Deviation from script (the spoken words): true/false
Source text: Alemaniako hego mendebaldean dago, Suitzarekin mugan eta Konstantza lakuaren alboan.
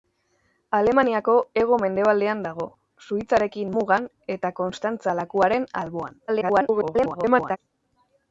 true